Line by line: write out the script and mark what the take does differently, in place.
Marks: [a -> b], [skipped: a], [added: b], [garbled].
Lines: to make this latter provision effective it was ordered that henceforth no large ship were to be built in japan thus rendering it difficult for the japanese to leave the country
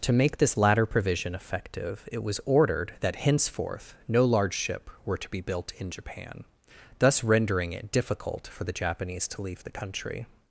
to make this latter provision effective it was ordered that henceforth no large ship were to be built in japan thus rendering it difficult for the japanese to leave the country